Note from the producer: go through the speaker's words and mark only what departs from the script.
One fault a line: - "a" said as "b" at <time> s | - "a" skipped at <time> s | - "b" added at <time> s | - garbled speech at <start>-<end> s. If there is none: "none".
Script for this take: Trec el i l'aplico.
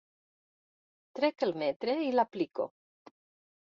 - "metre" added at 1.6 s